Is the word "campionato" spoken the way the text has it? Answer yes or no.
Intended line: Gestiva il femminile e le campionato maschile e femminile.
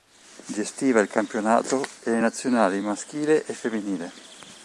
no